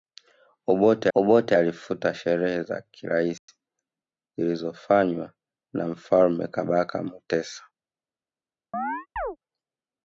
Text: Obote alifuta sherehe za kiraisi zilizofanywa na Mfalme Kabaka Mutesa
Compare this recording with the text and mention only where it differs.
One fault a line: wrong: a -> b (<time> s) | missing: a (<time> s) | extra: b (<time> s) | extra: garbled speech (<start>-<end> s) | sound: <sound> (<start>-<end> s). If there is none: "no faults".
extra: obote (1.1 s)
sound: dropout (3.4-3.5 s)
sound: chirp (8.7-9.4 s)